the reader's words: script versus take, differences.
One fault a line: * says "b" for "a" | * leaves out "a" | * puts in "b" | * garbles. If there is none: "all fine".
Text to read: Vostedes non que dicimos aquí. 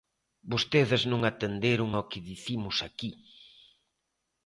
* puts in "atenderon ao"